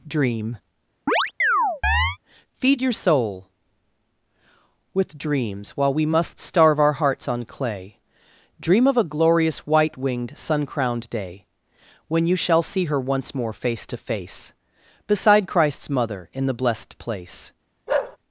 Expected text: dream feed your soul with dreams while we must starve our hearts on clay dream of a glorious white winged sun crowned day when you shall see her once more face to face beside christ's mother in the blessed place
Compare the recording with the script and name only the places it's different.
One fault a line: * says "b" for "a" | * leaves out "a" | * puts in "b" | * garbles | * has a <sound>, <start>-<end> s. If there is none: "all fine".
* has a chirp, 1.1-2.2 s
* has a bark, 17.9-18.2 s